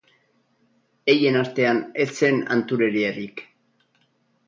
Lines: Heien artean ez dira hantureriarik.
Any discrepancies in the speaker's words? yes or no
yes